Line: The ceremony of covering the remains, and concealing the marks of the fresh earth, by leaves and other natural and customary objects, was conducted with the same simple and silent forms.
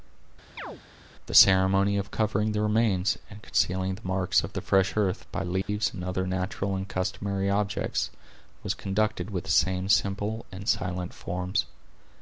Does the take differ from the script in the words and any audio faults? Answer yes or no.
yes